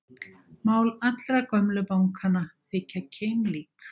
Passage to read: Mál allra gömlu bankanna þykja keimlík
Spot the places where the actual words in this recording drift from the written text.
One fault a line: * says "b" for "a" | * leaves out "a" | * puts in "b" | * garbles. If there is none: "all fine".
all fine